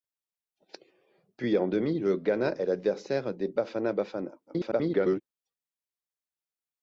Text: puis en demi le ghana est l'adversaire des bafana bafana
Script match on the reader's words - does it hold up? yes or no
no